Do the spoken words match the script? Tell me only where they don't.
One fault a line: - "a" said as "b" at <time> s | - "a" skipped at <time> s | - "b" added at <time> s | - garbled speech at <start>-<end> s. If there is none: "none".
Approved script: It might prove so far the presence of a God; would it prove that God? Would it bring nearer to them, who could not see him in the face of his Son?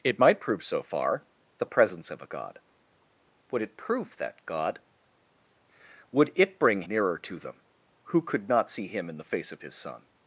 none